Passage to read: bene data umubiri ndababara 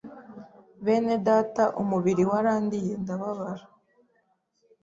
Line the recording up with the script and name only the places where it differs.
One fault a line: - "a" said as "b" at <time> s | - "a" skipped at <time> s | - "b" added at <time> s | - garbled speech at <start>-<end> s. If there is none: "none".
- "warandiye" added at 2.3 s